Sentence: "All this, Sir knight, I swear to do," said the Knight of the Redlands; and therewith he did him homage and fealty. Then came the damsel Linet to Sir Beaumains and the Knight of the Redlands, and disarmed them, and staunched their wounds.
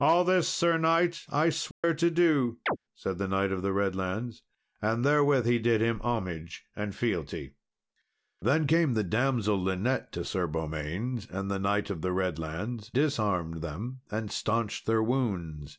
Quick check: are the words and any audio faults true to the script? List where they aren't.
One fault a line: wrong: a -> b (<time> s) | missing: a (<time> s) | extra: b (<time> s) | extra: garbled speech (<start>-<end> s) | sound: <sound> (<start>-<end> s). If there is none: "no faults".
sound: dropout (1.7-1.8 s)
sound: chirp (2.7-2.8 s)
missing: and (12.9 s)